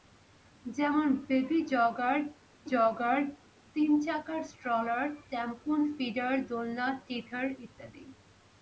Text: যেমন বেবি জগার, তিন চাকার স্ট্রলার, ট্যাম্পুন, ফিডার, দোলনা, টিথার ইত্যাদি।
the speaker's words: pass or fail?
fail